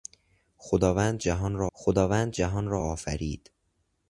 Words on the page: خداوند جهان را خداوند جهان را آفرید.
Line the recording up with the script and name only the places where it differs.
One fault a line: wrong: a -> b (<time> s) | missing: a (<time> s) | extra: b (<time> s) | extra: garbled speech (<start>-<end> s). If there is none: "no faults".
no faults